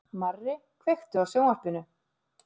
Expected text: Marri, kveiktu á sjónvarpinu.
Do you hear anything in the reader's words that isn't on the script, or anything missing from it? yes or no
no